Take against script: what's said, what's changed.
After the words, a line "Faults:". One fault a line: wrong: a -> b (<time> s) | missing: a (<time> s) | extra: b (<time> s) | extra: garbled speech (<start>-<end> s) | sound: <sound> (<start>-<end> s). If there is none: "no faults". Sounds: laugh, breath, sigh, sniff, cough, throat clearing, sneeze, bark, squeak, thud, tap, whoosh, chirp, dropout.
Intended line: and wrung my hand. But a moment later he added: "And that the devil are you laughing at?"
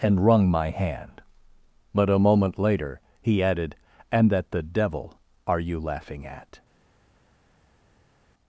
and wrung my hand. But a moment later he added: "And that the devil are you laughing at?"
Faults:
no faults